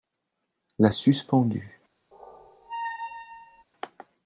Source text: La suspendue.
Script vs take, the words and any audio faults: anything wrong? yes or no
yes